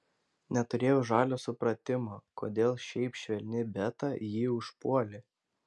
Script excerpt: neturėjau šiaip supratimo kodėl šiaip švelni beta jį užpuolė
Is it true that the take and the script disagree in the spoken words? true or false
true